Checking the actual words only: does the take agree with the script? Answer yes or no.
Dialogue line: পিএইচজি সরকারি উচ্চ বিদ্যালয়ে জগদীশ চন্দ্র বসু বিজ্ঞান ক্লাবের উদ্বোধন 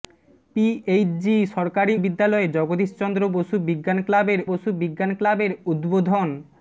no